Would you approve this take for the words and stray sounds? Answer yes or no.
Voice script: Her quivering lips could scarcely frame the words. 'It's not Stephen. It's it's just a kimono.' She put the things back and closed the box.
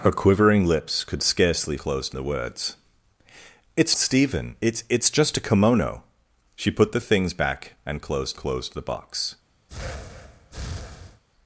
no